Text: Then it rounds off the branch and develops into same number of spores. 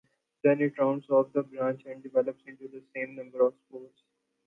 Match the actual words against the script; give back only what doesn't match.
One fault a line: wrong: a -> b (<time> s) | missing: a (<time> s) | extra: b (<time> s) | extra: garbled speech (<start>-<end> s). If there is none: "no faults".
extra: the (2.7 s)